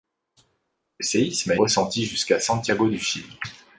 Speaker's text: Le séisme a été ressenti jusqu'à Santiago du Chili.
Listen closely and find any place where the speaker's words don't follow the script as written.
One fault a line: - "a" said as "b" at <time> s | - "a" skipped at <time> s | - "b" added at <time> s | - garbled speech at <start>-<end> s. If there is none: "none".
- "été" skipped at 1.6 s